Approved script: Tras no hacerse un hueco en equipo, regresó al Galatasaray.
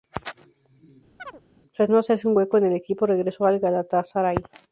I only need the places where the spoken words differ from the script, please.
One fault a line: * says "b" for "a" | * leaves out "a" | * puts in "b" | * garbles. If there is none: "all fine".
* puts in "el"